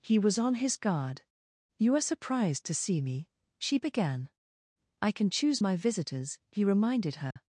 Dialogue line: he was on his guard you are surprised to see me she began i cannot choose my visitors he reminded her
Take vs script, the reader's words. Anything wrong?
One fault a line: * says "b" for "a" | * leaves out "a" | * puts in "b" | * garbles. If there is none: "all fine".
* says "can" for "cannot"